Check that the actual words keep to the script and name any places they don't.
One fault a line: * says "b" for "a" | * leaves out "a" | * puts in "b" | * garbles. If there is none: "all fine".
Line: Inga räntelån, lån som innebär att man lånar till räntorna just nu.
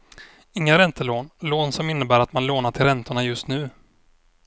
all fine